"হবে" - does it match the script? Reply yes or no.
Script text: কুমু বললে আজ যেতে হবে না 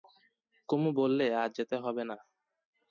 yes